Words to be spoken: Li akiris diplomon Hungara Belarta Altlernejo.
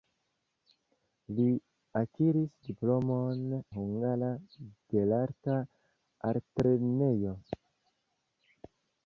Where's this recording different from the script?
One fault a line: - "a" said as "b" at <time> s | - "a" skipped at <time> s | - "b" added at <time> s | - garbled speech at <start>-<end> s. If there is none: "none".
none